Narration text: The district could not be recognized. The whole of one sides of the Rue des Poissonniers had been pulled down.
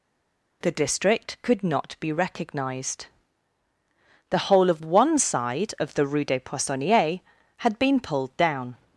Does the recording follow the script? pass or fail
fail